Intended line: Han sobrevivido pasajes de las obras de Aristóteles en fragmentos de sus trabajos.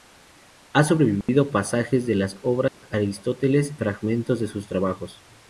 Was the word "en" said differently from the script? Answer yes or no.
yes